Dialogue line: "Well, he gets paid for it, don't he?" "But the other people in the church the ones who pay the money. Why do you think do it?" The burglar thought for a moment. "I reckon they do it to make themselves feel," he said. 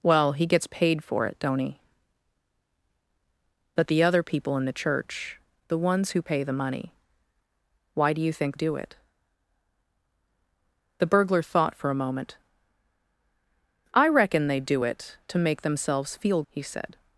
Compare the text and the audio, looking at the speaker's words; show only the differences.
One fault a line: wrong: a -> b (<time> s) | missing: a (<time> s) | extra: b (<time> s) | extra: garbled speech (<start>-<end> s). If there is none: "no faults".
no faults